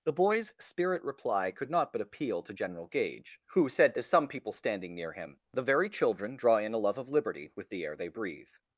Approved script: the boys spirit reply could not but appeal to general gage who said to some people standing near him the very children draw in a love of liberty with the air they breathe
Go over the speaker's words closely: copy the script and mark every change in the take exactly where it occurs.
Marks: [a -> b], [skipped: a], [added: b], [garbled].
the boys spirit reply could not but appeal to general gage who said to some people standing near him the very children draw in a love of liberty with the air they breathe